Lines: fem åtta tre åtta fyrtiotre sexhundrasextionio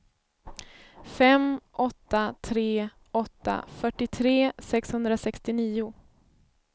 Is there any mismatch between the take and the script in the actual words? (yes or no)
no